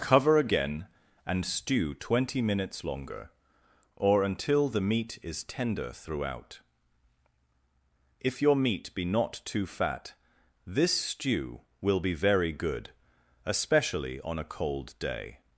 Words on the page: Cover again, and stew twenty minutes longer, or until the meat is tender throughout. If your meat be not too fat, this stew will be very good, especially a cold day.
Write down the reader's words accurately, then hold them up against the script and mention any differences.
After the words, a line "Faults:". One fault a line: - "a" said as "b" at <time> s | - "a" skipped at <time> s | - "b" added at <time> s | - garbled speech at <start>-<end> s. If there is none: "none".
Cover again, and stew twenty minutes longer, or until the meat is tender throughout. If your meat be not too fat, this stew will be very good, especially on a cold day.
Faults:
- "on" added at 14.2 s